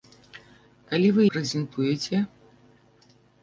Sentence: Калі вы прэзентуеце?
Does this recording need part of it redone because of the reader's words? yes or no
no